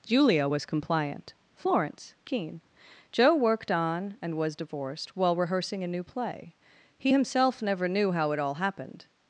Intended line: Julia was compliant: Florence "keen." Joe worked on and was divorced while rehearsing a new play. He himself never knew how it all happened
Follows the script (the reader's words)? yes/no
yes